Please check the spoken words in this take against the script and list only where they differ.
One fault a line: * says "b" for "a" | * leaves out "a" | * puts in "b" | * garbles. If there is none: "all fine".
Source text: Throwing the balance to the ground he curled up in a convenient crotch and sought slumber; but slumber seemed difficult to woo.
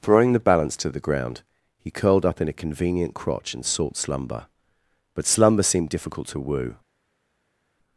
all fine